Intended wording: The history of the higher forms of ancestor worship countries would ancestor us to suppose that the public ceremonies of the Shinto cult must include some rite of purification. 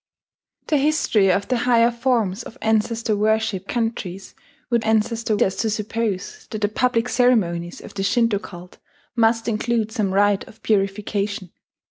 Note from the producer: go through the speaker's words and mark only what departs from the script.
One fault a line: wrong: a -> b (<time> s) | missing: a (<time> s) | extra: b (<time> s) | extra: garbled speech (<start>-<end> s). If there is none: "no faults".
no faults